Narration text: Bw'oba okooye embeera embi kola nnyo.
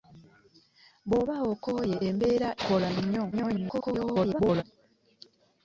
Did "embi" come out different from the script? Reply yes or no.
yes